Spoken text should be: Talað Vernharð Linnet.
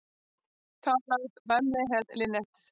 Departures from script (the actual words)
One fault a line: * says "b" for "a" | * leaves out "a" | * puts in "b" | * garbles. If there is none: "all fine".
all fine